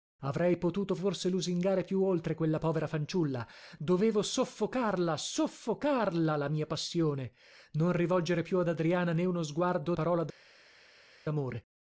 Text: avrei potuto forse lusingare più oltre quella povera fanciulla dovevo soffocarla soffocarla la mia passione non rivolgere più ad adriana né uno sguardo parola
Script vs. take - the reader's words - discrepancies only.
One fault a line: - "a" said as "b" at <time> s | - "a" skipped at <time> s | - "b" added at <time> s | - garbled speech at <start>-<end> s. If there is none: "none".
none